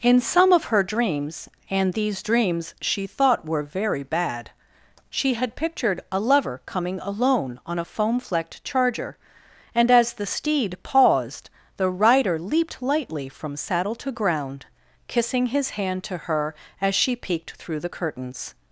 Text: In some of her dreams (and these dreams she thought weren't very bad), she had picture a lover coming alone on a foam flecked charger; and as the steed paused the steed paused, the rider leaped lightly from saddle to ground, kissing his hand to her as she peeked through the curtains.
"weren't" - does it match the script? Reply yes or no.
no